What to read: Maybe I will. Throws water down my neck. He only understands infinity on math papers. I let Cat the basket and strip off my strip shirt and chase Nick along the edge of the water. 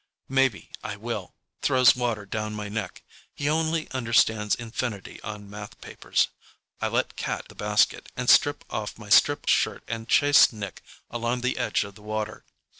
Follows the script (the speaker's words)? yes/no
yes